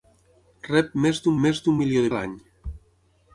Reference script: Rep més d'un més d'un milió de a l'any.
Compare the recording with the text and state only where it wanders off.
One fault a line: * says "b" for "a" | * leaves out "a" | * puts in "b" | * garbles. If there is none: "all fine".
all fine